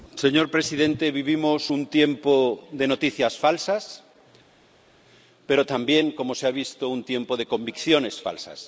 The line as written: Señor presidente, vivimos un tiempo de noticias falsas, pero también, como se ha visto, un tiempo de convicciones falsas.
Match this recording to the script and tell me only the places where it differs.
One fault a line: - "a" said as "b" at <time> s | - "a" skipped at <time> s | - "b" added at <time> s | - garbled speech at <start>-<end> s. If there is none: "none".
none